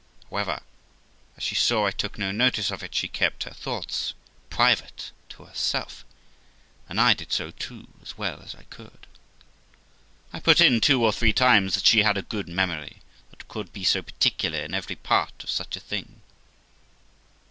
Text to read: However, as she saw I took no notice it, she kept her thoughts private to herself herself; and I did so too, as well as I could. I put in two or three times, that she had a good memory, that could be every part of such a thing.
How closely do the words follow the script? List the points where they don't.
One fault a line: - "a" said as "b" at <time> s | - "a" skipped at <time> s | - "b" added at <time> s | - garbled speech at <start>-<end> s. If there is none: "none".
- "of" added at 2.7 s
- "herself" skipped at 6.0 s
- "so particular in" added at 13.8 s